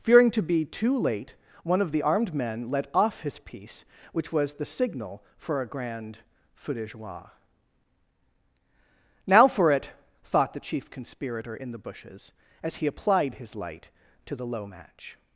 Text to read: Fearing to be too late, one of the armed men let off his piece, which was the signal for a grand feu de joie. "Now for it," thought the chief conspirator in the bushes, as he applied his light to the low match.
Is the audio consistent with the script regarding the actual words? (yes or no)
yes